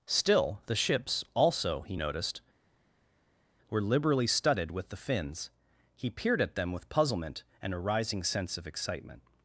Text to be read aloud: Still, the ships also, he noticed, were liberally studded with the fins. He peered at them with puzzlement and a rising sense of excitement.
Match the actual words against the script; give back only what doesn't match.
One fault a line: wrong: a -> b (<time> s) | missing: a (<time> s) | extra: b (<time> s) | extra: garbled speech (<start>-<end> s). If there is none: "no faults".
no faults